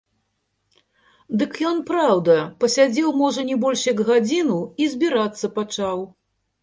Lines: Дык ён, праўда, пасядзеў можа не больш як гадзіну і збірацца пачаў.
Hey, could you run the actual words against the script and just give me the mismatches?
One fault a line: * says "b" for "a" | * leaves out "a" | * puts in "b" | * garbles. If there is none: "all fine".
all fine